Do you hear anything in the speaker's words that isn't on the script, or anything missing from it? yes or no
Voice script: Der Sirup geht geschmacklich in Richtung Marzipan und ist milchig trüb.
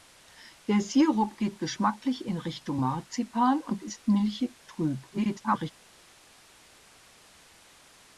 yes